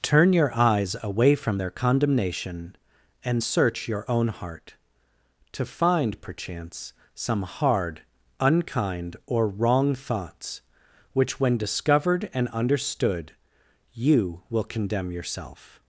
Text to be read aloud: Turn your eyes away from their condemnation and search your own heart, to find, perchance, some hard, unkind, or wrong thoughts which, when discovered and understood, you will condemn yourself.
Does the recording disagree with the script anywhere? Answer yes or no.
no